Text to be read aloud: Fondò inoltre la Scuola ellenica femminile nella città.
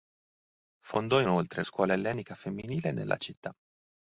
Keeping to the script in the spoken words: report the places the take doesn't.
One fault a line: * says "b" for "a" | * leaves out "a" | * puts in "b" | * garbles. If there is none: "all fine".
* leaves out "la"